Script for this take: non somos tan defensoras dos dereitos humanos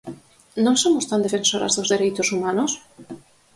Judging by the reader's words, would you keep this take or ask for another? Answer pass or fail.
pass